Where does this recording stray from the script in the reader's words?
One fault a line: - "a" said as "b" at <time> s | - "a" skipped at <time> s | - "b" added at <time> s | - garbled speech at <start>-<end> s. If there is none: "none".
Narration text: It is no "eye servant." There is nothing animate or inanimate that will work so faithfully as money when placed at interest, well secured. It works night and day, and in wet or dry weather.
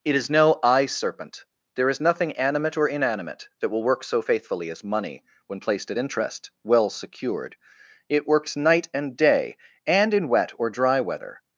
- "servant" said as "serpent" at 0.9 s